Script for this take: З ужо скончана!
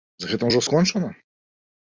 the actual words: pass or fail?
fail